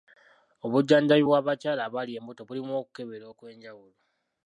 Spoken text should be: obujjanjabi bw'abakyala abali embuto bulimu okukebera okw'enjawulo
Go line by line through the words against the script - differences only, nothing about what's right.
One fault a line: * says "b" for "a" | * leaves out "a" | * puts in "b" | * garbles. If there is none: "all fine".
all fine